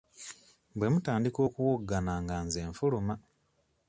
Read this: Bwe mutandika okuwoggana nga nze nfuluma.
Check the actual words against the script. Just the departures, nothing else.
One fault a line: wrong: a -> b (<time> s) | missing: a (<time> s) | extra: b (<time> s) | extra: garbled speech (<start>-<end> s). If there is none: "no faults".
no faults